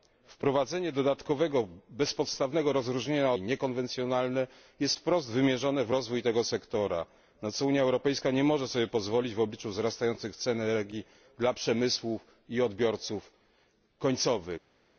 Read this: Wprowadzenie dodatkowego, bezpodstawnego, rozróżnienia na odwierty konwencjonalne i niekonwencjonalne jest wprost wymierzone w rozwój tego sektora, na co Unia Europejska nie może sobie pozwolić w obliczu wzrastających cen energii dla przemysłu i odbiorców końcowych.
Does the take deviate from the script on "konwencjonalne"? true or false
true